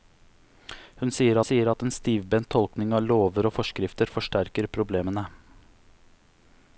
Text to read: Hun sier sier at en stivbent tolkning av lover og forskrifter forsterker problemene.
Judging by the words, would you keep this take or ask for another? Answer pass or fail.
pass